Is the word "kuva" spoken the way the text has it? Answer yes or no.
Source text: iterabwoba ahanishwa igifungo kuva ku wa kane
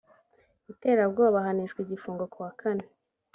no